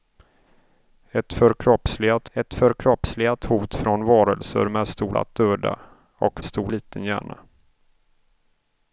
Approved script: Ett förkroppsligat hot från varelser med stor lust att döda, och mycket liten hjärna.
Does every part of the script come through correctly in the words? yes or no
no